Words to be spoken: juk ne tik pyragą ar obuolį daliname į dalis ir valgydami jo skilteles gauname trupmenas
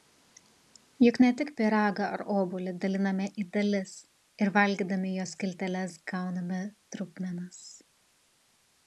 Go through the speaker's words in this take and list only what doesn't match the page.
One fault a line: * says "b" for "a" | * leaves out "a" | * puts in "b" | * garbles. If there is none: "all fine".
all fine